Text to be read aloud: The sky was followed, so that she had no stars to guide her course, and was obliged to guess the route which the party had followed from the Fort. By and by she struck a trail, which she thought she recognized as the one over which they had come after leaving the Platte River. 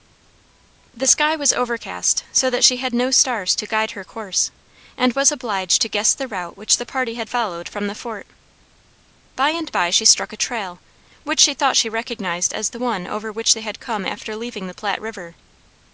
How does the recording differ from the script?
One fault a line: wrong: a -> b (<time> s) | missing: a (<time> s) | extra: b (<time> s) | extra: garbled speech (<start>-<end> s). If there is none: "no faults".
wrong: followed -> overcast (1.5 s)